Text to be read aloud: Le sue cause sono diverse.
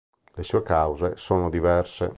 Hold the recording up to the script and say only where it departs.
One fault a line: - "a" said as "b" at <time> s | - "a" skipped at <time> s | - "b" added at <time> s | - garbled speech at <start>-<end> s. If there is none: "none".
none